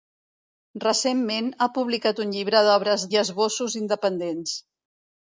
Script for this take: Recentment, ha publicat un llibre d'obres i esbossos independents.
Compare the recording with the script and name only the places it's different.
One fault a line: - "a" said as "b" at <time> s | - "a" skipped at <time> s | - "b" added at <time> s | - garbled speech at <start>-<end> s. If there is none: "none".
none